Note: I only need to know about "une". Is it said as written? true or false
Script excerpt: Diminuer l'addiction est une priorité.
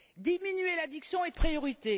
false